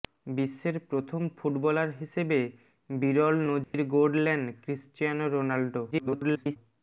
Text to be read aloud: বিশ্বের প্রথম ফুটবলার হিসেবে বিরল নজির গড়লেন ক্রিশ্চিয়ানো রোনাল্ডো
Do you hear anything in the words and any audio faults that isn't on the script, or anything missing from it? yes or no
yes